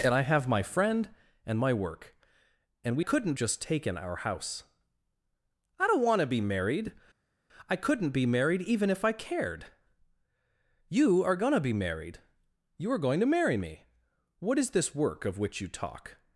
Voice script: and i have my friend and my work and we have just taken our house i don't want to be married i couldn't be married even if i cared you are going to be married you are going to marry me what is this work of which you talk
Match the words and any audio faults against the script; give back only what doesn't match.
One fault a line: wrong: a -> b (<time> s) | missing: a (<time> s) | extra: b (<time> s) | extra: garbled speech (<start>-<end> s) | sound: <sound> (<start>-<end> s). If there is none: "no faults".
wrong: have -> couldn't (3.0 s)